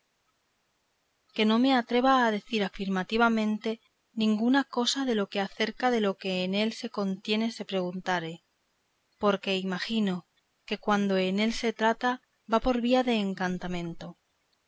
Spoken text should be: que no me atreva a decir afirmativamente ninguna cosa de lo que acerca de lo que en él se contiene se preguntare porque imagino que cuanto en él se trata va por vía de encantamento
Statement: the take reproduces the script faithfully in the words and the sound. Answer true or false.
true